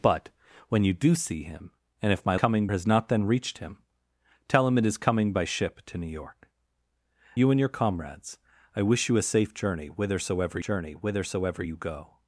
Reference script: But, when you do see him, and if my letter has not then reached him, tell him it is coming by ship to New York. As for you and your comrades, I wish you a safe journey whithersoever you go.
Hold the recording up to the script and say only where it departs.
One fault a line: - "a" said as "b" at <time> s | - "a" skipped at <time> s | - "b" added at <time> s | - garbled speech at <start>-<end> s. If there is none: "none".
- "letter" said as "coming" at 2.3 s
- "As for" skipped at 6.5 s
- "journey whithersoever" added at 10.6 s